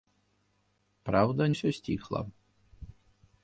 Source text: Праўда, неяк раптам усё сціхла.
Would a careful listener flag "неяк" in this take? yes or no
yes